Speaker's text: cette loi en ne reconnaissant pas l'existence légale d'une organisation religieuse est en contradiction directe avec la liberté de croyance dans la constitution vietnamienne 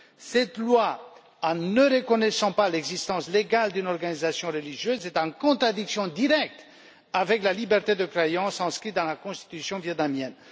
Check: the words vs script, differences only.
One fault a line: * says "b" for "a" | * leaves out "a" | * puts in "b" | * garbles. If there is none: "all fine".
* puts in "inscrite"